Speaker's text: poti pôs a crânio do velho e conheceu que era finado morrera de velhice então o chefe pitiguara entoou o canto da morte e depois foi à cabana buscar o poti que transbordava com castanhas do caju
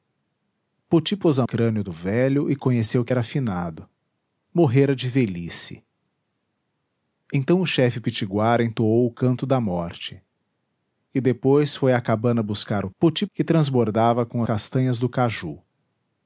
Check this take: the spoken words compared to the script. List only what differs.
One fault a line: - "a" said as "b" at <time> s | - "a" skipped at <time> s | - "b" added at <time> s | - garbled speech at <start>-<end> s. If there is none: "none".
none